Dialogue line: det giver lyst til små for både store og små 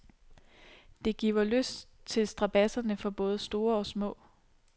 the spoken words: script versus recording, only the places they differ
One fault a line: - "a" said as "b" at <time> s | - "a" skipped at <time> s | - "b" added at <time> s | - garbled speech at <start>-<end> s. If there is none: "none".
- "små" said as "strabadserne" at 2.3 s